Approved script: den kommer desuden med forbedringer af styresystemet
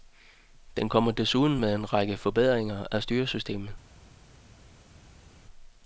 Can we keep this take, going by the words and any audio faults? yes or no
no